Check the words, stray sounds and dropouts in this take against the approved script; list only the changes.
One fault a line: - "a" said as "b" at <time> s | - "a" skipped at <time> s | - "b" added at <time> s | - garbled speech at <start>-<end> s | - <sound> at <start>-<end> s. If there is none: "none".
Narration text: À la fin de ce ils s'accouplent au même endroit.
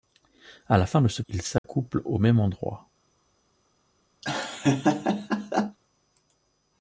- dropout at 1.6-1.6 s
- laugh at 4.2-5.8 s